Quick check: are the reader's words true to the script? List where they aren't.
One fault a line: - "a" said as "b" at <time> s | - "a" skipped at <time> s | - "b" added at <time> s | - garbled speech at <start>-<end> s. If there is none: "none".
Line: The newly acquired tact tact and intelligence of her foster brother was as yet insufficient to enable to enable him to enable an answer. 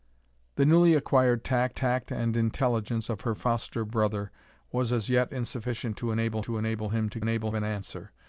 none